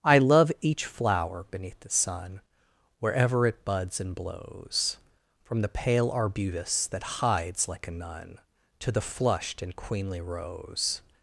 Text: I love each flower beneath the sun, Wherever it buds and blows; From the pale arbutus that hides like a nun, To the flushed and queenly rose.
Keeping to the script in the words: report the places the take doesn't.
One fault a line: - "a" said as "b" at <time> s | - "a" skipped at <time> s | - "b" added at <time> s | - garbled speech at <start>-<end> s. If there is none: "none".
none